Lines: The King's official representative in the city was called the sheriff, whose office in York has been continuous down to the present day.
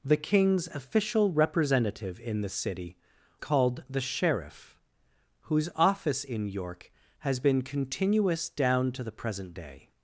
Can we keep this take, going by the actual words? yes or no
no